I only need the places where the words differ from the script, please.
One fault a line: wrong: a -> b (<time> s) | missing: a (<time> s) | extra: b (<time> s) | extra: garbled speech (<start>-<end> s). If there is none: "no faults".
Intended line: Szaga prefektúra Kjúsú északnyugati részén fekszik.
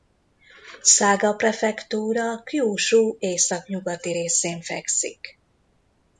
no faults